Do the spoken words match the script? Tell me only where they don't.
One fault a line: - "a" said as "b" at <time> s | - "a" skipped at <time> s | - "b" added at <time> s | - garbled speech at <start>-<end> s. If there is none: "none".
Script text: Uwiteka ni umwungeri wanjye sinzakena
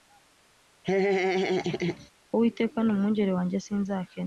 none